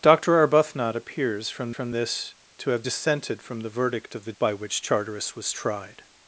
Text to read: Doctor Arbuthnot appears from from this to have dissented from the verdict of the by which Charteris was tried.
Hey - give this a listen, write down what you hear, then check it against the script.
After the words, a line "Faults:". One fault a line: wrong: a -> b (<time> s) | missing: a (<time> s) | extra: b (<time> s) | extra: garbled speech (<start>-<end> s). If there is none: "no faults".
Doctor Arbuthnot appears from from this to have dissented from the verdict of the by which Charteris was tried.
Faults:
no faults